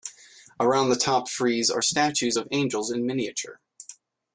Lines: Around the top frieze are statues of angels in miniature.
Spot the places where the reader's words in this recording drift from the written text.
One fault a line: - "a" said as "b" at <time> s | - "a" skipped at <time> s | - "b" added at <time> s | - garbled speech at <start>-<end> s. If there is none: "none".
none